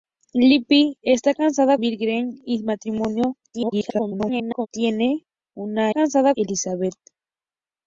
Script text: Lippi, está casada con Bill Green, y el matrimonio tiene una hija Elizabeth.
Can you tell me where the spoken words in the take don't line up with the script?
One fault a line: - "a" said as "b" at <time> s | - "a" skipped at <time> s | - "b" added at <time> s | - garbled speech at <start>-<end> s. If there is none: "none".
- "con" skipped at 1.8 s
- garbled speech at 3.5-4.7 s
- "hija" said as "casada" at 5.9 s